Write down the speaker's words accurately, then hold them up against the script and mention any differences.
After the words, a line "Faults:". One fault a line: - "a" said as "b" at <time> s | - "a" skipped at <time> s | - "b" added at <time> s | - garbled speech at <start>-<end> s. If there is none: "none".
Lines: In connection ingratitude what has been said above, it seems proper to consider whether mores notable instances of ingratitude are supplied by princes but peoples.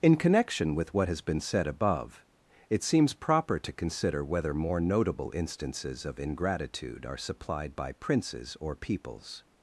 In connection with what has been said above, it seems proper to consider whether more notable instances of ingratitude are supplied by princes or peoples.
Faults:
- "ingratitude" said as "with" at 0.7 s
- "mores" said as "more" at 4.5 s
- "but" said as "or" at 8.6 s